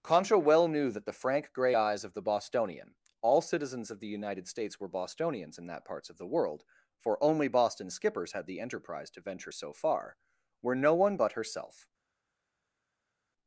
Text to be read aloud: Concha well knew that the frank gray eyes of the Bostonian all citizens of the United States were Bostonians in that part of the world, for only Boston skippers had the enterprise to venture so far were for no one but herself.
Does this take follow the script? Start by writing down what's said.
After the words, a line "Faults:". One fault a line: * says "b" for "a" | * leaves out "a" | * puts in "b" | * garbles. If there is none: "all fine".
Concha well knew that the frank gray eyes of the Bostonian all citizens of the United States were Bostonians in that parts of the world, for only Boston skippers had the enterprise to venture so far were no one but herself.
Faults:
* says "parts" for "part"
* leaves out "for"